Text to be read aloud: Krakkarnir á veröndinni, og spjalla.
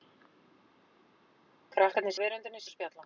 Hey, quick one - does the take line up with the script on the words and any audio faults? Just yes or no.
yes